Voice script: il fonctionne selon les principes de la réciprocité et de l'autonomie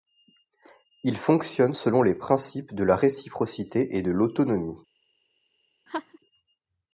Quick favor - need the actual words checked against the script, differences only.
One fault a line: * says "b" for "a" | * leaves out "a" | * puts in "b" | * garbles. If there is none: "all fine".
all fine